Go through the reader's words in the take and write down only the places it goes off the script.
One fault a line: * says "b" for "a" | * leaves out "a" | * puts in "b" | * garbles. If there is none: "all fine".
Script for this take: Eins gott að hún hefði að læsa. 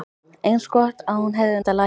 all fine